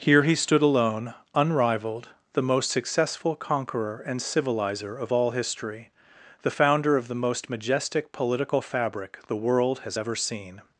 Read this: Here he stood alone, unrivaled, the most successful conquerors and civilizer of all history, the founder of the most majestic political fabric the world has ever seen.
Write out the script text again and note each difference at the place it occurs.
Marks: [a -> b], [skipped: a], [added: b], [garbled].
Here he stood alone, unrivaled, the most successful [conquerors -> conqueror] and civilizer of all history, the founder of the most majestic political fabric the world has ever seen.